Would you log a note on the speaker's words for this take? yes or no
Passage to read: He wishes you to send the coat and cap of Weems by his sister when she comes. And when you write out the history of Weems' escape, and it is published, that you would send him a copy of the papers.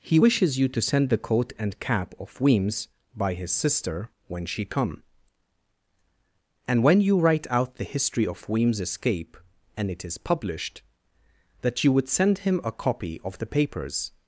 yes